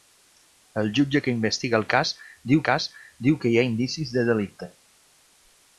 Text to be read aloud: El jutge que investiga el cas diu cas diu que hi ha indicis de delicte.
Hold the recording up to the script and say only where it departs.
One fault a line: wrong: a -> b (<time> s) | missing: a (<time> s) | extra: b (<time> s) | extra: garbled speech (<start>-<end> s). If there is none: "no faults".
no faults